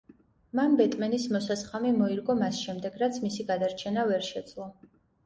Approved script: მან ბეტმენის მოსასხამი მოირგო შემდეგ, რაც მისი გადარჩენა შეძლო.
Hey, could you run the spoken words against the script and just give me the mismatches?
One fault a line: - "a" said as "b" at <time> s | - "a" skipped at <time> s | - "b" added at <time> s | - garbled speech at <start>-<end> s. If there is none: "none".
- "მას" added at 2.4 s
- "ვერ" added at 4.1 s